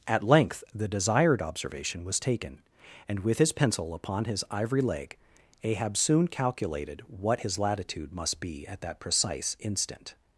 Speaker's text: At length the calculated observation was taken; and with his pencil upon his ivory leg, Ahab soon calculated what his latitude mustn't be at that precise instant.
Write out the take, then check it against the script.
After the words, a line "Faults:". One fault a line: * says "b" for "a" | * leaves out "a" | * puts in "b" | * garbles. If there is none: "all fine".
At length the desired observation was taken; and with his pencil upon his ivory leg, Ahab soon calculated what his latitude must be at that precise instant.
Faults:
* says "desired" for "calculated"
* says "must" for "mustn't"